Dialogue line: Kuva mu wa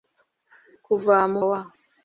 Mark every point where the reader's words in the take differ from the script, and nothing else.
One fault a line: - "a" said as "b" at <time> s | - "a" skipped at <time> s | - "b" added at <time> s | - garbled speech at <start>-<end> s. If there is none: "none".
none